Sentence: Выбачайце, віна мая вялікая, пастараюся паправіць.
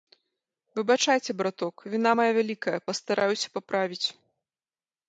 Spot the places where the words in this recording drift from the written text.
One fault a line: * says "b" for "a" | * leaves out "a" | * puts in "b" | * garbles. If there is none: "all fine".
* puts in "браток"